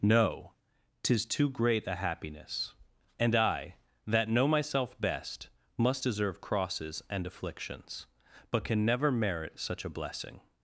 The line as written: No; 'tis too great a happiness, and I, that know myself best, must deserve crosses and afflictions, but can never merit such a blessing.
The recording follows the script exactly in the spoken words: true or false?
true